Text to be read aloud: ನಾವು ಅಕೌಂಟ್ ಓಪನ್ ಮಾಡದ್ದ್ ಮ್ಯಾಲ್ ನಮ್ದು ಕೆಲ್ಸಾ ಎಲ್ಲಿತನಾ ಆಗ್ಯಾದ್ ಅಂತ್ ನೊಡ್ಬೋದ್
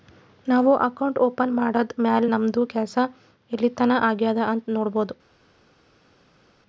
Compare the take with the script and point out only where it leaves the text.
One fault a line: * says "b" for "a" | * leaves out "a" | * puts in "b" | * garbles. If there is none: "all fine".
all fine